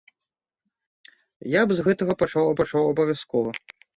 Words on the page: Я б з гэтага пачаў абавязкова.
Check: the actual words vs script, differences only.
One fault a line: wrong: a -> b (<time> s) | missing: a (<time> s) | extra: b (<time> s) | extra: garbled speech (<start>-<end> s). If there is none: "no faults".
extra: пачаў (2.6 s)